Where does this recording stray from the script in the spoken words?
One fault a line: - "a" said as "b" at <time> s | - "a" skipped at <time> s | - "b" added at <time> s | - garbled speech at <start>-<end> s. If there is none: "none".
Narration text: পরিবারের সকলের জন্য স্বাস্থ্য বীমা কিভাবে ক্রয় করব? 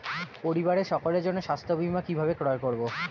none